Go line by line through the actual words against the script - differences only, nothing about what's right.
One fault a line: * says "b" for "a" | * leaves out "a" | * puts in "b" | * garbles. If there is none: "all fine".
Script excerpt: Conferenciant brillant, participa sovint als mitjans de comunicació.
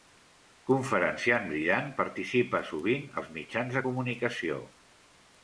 all fine